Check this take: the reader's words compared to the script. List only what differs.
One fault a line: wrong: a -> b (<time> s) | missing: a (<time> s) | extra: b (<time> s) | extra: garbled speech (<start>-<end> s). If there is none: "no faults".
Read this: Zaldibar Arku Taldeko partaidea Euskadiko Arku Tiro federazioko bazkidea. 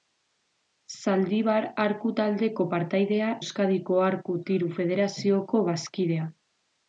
no faults